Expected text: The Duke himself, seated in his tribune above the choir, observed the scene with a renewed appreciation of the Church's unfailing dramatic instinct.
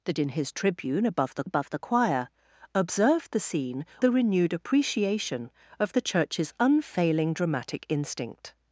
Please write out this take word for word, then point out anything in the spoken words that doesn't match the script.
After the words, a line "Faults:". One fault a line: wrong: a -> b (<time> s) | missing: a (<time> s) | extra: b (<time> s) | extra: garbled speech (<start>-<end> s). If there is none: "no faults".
The In his tribune above the above the choir, observed the scene a renewed appreciation of the Church's unfailing dramatic instinct.
Faults:
missing: Duke himself seated (0.1 s)
extra: above the (1.4 s)
missing: with (3.8 s)